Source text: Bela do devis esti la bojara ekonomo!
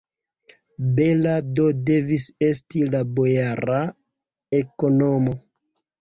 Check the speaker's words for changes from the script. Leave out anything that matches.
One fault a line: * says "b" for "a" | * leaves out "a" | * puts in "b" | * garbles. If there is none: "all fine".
all fine